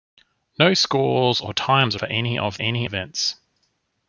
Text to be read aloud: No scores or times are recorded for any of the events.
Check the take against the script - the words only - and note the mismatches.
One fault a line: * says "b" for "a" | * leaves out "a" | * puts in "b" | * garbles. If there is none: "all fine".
* leaves out "recorded"
* says "any" for "the"